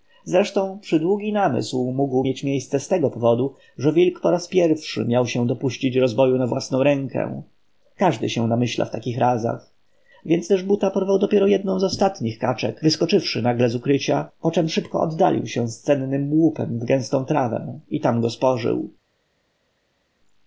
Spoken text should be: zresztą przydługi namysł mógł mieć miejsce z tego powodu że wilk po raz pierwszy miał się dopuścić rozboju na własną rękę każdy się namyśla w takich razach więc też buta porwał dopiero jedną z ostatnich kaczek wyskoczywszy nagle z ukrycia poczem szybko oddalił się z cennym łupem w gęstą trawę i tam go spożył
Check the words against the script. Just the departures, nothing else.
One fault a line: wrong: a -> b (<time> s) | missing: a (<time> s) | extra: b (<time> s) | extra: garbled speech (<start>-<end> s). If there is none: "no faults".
no faults